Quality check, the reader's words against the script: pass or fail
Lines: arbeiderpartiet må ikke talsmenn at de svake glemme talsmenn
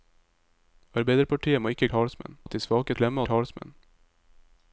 pass